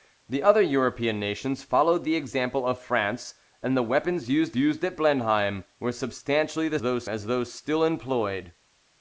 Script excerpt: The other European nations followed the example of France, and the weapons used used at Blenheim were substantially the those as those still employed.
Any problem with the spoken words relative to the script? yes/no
no